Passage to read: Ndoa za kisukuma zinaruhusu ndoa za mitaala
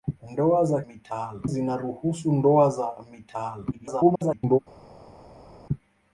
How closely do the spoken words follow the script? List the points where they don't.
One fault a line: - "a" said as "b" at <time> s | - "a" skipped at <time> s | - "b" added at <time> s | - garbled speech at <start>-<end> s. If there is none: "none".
- "kisukuma" said as "mitaala" at 0.9 s
- garbled speech at 3.7-4.6 s